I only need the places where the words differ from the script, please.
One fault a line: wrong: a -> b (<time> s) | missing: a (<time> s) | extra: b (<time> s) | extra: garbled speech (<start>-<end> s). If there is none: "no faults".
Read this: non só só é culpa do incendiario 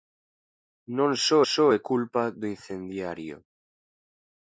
no faults